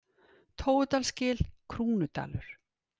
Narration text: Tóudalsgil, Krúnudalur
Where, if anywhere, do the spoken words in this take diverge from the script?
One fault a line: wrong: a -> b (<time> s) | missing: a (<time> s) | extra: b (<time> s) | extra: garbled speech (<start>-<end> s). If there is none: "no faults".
no faults